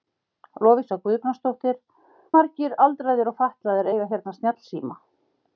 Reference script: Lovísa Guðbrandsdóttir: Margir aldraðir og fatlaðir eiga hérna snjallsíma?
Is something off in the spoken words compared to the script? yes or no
no